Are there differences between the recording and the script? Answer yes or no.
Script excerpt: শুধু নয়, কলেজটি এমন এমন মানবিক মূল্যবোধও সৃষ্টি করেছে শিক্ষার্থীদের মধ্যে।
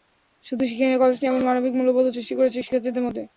yes